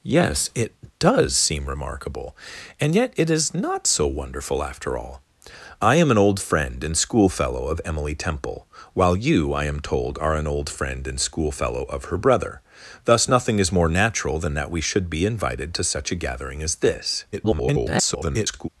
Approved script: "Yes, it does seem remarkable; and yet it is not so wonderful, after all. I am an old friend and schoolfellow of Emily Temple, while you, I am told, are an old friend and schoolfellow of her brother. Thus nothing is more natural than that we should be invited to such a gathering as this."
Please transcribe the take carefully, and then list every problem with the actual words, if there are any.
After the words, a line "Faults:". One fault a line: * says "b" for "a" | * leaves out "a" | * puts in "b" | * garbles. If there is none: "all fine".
"Yes, it does seem remarkable; and yet it is not so wonderful, after all. I am an old friend and schoolfellow of Emily Temple, while you, I am told, are an old friend and schoolfellow of her brother. Thus nothing is more natural than that we should be invited to such a gathering as this." [garbled]
Faults:
* garbles